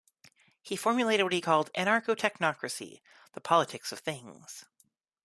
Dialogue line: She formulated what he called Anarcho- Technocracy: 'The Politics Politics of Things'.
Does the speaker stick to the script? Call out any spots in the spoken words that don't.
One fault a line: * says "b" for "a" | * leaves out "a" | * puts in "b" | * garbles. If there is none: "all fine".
* says "He" for "She"
* leaves out "Politics"